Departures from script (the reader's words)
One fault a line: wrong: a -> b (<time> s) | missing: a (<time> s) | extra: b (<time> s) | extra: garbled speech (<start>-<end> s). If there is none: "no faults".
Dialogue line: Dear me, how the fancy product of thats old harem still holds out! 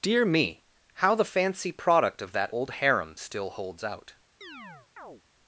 wrong: thats -> that (2.3 s)